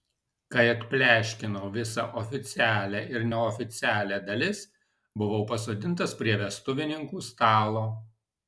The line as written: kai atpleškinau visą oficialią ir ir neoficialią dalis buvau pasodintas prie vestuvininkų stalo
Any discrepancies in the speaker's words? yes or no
yes